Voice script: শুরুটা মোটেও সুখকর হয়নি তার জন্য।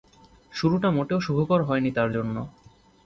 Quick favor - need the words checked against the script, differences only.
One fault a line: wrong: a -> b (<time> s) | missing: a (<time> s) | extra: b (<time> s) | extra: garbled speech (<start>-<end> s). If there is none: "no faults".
no faults